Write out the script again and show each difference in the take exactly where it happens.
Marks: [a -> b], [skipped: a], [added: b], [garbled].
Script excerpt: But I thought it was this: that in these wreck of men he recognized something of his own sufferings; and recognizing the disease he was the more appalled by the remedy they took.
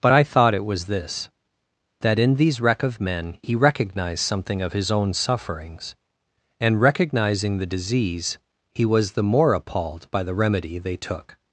But I thought it was this: that in these wreck of men he recognized something of his own sufferings; and recognizing the disease he was the more appalled by the remedy they took.